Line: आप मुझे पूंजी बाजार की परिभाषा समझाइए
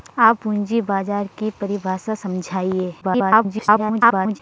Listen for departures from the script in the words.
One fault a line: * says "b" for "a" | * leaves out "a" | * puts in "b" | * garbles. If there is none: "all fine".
* leaves out "मुझे"
* garbles